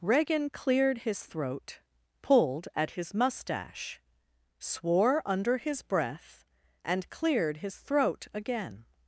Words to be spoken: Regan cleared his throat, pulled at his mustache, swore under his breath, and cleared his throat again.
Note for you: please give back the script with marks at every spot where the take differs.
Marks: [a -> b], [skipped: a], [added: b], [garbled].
Regan cleared his throat, pulled at his mustache, swore under his breath, and cleared his throat again.